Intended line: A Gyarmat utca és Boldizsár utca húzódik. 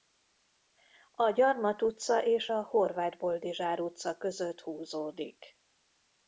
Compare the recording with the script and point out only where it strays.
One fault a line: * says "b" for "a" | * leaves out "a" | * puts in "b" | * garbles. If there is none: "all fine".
* puts in "a Horváth"
* puts in "között"